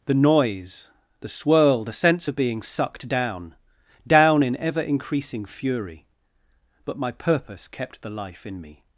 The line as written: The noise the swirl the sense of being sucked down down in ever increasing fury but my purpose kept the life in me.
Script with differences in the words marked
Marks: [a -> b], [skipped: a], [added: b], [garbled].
The noise the swirl the sense of being sucked down down in ever increasing fury but my purpose kept the life in me.